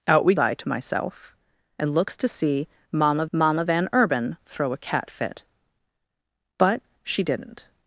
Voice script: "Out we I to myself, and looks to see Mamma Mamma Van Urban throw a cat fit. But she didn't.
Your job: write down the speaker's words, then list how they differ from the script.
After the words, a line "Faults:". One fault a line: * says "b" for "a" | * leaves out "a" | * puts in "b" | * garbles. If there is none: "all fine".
"Out we I to myself, and looks to see Mamma Mamma Van Urban throw a cat fit. But she didn't.
Faults:
all fine